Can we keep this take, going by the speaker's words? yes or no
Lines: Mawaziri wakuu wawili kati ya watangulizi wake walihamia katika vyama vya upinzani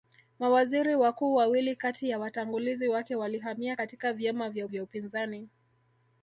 no